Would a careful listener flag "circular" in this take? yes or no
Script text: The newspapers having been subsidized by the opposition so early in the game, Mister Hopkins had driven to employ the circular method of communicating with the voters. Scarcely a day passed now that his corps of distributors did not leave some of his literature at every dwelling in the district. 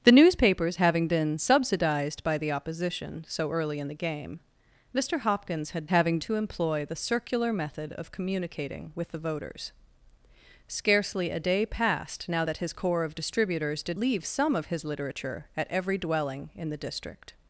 no